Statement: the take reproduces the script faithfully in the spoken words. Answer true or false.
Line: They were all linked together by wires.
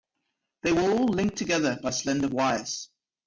false